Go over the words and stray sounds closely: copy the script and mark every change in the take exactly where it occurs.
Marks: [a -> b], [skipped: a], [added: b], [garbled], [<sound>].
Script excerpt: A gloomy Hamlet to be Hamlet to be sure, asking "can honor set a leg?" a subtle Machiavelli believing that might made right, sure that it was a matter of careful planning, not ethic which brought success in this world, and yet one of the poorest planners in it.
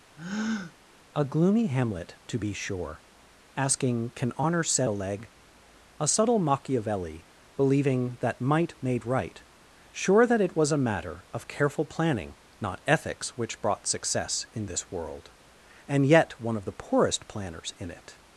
[breath] A gloomy Hamlet to be [skipped: Hamlet to be] sure, asking "can honor set a leg?" a subtle Machiavelli believing that might made right, sure that it was a matter of careful planning, not [ethic -> ethics] which brought success in this world, and yet one of the poorest planners in it.